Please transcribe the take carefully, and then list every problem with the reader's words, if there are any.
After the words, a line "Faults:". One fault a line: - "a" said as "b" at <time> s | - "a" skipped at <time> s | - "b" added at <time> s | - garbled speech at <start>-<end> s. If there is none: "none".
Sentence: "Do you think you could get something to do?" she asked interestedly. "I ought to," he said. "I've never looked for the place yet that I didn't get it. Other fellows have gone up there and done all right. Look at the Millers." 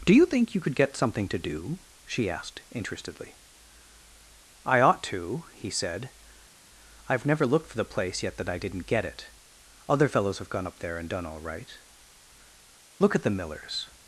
"Do you think you could get something to do?" she asked interestedly. "I ought to," he said. "I've never looked for the place yet that I didn't get it. Other fellows have gone up there and done all right. Look at the Millers."
Faults:
none